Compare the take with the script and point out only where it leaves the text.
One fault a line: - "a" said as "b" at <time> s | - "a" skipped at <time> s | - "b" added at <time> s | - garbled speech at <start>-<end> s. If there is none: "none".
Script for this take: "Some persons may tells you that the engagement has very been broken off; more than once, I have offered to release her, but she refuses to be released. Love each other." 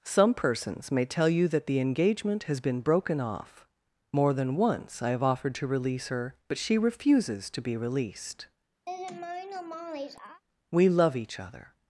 - "tells" said as "tell" at 1.1 s
- "very" skipped at 2.6 s
- "We" added at 10.7 s